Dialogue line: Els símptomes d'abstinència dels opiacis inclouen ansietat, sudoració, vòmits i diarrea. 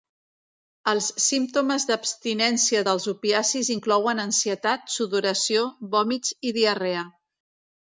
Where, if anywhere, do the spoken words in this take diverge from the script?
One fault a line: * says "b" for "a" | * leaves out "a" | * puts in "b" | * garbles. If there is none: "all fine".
all fine